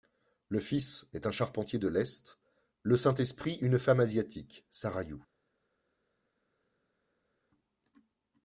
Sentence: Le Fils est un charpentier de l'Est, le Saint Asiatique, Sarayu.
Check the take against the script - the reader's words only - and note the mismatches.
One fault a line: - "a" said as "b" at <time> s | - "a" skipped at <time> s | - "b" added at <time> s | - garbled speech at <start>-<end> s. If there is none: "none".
- "Esprit une femme" added at 3.1 s